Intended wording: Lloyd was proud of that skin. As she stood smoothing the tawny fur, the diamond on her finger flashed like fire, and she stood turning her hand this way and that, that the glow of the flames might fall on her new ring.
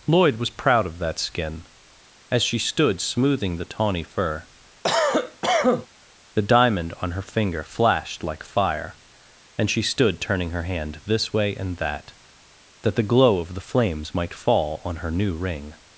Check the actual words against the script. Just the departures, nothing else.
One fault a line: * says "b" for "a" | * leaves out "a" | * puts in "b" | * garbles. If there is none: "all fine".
all fine